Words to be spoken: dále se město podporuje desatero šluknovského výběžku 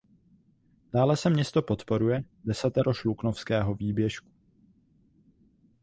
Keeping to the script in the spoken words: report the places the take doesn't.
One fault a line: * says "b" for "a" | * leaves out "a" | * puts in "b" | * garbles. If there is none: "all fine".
all fine